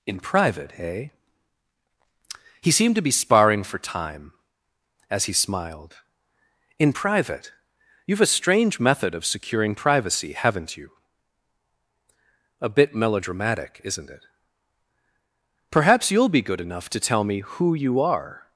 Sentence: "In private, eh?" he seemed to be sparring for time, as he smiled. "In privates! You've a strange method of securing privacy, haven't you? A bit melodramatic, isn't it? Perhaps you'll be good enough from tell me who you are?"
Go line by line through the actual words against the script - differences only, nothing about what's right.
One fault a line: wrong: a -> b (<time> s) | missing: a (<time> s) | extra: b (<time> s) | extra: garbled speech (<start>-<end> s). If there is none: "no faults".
wrong: privates -> private (6.9 s)
wrong: from -> to (16.9 s)